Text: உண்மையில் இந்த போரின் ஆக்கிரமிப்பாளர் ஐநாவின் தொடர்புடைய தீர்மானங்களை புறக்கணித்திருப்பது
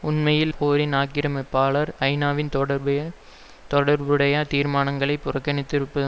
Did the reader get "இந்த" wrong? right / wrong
wrong